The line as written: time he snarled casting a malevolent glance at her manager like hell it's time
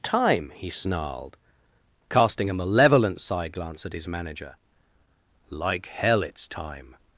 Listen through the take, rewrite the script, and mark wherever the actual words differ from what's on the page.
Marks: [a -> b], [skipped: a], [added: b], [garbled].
time he snarled casting a malevolent [added: side] glance at [her -> his] manager like hell it's time